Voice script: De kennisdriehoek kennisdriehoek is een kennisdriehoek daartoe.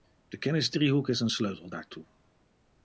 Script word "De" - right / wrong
right